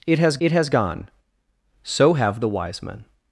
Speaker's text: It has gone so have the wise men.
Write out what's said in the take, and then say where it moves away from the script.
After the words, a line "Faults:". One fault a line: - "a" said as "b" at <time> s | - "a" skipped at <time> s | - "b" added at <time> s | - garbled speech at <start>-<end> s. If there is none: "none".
It has it has gone so have the wise men.
Faults:
- "it has" added at 0.4 s